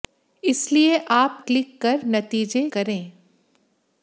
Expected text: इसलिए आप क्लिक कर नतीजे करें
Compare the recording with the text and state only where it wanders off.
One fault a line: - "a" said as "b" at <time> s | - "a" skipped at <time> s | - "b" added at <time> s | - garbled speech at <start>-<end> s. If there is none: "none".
none